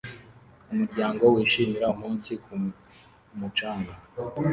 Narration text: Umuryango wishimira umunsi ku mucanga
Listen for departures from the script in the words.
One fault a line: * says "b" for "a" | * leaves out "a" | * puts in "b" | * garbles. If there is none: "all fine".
all fine